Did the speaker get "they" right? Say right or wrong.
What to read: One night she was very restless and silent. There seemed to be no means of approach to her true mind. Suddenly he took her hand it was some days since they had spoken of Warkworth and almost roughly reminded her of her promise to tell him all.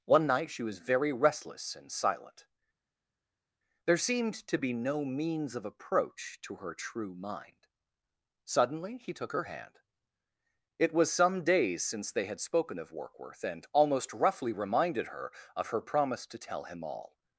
right